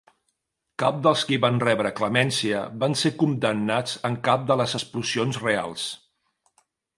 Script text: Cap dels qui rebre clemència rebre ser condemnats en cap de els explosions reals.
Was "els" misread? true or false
true